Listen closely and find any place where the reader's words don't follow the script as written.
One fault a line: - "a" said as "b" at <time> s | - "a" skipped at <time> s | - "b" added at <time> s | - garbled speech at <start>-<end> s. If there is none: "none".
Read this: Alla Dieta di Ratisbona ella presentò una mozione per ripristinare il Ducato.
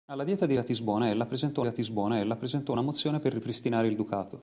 - "Ratisbona ella presentò" added at 1.6 s